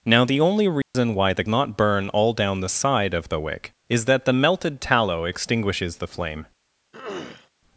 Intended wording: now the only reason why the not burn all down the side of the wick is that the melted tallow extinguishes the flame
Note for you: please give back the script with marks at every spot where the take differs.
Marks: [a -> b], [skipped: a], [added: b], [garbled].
now the only reason why the not burn all down the side of the wick is that the melted tallow extinguishes the flame